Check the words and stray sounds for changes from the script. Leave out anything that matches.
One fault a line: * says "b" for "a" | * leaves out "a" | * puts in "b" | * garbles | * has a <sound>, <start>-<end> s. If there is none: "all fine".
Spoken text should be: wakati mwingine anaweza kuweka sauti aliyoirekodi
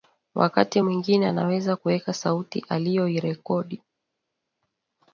all fine